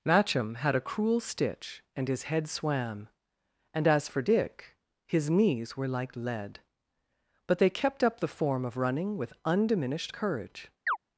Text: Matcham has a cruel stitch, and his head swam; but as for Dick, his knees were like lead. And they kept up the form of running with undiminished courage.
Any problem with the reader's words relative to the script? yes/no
yes